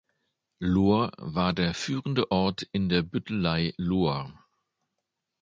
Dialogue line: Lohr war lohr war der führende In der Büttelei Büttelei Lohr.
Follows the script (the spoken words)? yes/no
no